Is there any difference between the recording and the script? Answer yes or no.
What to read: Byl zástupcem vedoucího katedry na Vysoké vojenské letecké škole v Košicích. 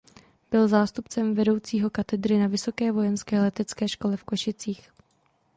no